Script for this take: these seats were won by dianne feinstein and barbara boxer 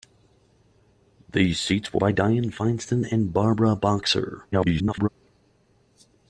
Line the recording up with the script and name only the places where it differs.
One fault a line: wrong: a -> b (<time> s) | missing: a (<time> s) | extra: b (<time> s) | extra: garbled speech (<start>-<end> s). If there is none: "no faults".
missing: won (2.0 s)
extra: garbled speech (4.5-5.1 s)